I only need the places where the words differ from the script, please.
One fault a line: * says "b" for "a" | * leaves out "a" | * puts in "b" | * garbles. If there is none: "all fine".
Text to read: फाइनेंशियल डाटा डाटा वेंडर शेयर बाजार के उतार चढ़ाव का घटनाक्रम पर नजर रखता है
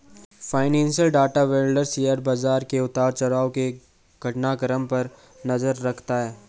* leaves out "डाटा"
* says "के" for "का"